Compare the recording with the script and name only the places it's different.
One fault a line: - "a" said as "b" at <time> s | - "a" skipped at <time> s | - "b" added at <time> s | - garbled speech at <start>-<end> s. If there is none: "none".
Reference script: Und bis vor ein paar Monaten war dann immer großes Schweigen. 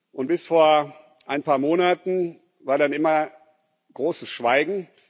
none